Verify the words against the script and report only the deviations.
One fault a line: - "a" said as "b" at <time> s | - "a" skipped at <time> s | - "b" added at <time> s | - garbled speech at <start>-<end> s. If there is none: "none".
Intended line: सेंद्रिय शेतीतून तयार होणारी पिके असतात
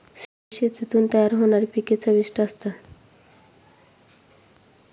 - "चविष्ट" added at 1.9 s